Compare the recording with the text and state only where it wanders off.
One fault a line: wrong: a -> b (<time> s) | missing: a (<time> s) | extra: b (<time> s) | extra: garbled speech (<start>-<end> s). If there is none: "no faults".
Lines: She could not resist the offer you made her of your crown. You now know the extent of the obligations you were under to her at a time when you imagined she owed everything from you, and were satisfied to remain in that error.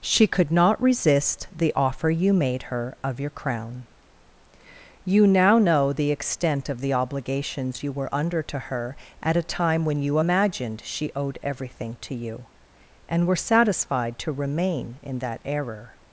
wrong: from -> to (12.0 s)